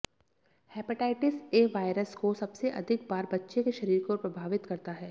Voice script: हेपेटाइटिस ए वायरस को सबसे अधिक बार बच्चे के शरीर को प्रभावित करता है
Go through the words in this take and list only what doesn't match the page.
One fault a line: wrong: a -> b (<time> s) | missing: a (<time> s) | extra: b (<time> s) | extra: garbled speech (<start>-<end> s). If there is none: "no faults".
no faults